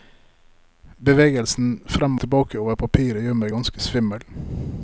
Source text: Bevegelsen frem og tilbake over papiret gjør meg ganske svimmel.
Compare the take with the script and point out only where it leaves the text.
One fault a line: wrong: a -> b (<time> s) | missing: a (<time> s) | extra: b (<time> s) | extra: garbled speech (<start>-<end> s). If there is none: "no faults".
missing: og (2.2 s)